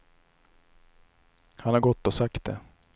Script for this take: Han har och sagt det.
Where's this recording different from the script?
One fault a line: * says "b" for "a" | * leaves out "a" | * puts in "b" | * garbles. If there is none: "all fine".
* puts in "gått"